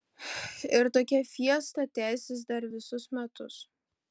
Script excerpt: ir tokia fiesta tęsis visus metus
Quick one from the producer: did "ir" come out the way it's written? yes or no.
yes